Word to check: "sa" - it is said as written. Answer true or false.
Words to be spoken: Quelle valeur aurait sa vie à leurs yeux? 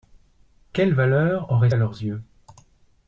false